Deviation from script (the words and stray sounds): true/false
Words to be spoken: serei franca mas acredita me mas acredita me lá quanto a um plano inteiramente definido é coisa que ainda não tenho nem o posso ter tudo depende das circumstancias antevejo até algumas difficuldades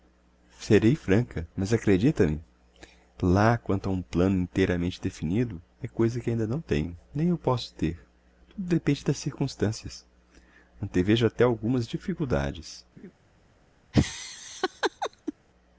true